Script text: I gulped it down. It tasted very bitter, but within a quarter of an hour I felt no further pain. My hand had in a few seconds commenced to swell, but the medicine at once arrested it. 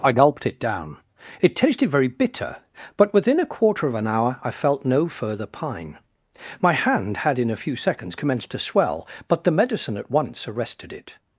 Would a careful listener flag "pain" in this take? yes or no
yes